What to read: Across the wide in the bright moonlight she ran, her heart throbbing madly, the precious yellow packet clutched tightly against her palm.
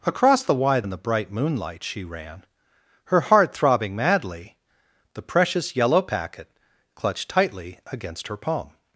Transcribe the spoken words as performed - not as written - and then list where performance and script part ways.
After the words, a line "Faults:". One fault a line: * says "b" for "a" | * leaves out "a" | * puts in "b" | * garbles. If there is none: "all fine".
Across the wide in the bright moonlight she ran, her heart throbbing madly, the precious yellow packet clutched tightly against her palm.
Faults:
all fine